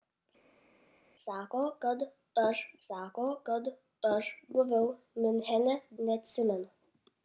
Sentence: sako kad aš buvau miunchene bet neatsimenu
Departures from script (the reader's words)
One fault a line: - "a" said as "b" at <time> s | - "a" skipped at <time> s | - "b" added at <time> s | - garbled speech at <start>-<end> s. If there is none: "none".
- "sako kad aš" added at 2.9 s
- "bet" skipped at 5.7 s